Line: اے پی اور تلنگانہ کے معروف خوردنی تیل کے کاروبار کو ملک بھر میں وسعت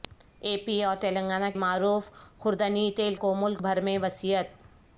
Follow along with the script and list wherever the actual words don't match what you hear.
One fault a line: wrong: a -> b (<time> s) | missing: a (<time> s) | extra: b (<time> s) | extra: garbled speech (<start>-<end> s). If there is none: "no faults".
missing: کے (1.5 s)
missing: کے کاروبار (3.1 s)